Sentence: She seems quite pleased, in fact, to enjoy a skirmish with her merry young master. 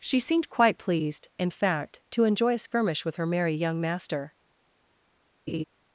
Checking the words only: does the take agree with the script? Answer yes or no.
no